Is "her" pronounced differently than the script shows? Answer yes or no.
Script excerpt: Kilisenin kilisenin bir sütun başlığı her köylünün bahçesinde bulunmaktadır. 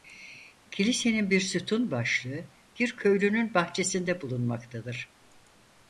yes